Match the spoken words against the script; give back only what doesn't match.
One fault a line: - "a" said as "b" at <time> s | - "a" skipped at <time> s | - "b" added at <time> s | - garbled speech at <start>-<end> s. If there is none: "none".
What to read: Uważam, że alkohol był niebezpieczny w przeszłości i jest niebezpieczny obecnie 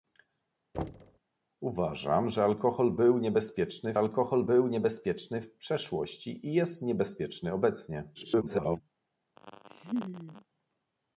- "alkohol był niebezpieczny" added at 4.0 s
- garbled speech at 8.1-8.8 s